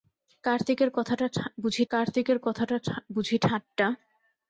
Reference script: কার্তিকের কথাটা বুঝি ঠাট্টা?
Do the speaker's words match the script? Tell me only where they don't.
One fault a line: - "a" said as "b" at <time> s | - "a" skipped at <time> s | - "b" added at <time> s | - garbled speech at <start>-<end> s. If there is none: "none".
- "কার্তিকের কথাটা বুঝি" added at 1.9 s